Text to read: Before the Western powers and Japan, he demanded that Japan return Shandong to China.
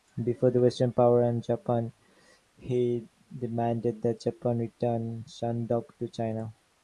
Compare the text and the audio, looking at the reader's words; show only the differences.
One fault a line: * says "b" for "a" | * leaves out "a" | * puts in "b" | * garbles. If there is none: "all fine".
all fine